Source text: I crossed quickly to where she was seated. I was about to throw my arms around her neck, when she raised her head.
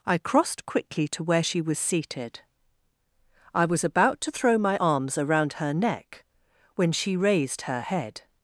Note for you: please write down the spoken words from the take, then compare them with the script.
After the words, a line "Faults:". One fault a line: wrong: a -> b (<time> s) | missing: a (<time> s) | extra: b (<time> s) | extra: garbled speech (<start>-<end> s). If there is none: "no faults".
I crossed quickly to where she was seated. I was about to throw my arms around her neck, when she raised her head.
Faults:
no faults